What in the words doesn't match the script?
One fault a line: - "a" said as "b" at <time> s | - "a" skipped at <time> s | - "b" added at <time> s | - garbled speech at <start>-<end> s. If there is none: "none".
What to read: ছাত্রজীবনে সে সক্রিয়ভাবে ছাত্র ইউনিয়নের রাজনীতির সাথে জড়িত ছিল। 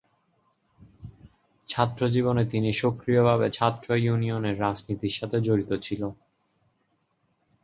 - "সে" said as "তিনি" at 2.5 s